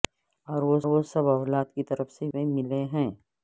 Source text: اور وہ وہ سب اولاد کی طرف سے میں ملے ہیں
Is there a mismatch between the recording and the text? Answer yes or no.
no